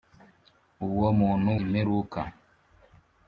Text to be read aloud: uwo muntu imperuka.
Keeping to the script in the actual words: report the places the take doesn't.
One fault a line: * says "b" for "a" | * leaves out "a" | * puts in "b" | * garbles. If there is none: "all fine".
all fine